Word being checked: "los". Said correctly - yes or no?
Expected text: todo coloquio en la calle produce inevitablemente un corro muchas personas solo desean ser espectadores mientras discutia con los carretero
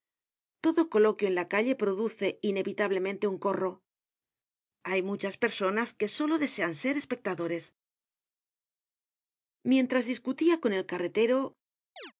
no